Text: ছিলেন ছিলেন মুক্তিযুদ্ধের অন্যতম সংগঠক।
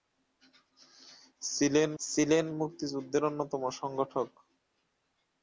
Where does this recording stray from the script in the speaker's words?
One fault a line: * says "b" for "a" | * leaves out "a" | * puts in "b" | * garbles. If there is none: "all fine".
all fine